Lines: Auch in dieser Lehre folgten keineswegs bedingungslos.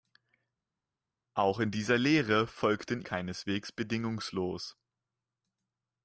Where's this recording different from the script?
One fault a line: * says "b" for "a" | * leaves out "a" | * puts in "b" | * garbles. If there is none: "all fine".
all fine